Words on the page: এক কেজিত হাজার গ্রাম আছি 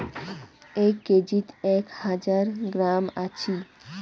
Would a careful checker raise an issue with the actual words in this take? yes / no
yes